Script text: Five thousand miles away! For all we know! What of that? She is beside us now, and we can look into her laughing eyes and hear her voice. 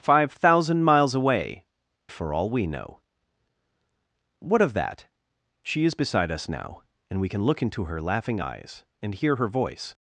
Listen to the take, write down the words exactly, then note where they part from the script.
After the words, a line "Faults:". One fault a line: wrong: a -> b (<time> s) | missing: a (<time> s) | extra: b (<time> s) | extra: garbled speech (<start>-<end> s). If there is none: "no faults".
Five thousand miles away! For all we know! What of that? She is beside us now, and we can look into her laughing eyes and hear her voice.
Faults:
no faults